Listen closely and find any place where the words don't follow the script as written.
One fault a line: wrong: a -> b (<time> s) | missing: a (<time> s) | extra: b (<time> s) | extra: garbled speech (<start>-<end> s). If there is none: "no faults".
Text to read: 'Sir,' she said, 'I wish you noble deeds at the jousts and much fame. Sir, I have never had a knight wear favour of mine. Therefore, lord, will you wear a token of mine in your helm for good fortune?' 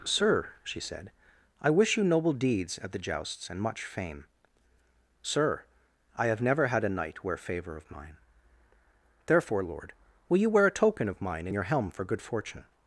no faults